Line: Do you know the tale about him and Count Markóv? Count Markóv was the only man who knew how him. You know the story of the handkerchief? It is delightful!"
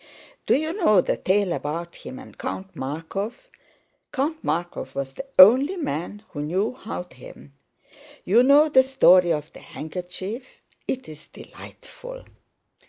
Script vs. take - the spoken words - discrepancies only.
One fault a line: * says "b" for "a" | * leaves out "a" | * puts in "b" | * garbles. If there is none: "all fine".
all fine